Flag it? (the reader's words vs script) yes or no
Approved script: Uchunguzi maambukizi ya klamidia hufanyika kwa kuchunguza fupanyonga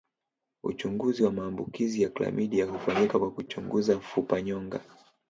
yes